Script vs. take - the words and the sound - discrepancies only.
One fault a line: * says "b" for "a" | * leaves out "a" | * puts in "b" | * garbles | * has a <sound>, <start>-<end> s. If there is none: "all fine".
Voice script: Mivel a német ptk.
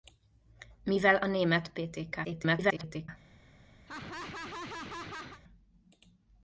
* garbles
* has a laugh, 3.9-5.4 s